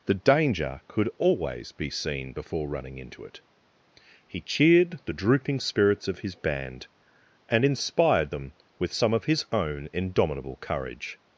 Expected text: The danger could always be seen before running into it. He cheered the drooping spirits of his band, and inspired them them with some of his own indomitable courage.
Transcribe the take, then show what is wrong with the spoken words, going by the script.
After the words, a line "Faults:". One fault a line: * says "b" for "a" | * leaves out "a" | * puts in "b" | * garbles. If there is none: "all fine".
The danger could always be seen before running into it. He cheered the drooping spirits of his band, and inspired them with some of his own indomitable courage.
Faults:
* leaves out "them"